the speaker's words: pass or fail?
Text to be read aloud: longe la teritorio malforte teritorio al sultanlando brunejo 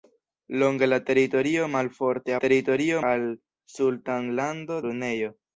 pass